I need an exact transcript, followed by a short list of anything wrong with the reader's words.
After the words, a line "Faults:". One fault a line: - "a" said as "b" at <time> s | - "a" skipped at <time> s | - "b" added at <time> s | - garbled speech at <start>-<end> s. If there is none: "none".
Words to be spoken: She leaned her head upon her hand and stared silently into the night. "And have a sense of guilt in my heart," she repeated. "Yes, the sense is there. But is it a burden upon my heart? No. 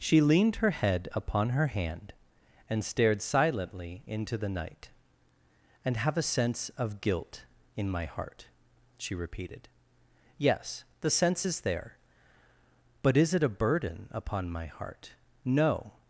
She leaned her head upon her hand and stared silently into the night. "And have a sense of guilt in my heart," she repeated. "Yes, the sense is there. But is it a burden upon my heart? No.
Faults:
none